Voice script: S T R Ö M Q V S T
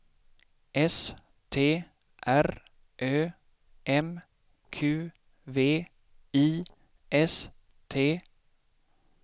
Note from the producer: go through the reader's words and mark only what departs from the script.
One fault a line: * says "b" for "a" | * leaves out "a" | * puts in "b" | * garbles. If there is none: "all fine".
* puts in "I"